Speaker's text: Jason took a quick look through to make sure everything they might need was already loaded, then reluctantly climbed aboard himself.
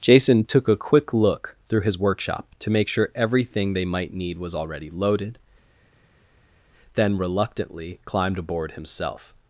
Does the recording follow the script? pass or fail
fail